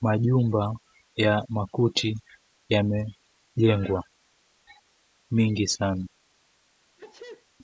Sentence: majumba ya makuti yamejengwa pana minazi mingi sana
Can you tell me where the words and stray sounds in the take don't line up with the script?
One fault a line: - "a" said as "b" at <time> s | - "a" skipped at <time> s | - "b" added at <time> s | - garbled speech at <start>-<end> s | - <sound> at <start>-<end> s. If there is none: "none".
- "pana minazi" skipped at 4.0 s
- sneeze at 7.0-7.5 s